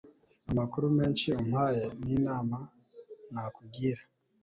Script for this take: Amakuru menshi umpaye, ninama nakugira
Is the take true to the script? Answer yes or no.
yes